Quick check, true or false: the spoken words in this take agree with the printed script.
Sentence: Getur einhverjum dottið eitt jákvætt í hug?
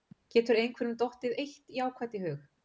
true